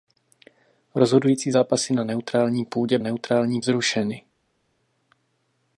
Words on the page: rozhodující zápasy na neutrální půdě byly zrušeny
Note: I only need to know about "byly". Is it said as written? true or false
false